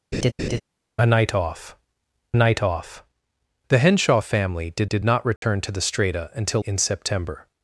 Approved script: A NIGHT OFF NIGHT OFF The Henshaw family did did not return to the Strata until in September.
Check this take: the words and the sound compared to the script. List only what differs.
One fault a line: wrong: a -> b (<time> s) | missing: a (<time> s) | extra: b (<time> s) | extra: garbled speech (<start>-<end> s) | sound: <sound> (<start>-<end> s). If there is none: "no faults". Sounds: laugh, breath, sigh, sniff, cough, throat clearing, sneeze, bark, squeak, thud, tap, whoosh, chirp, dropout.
sound: laugh (0.1-0.6 s)
sound: dropout (5.4-5.4 s)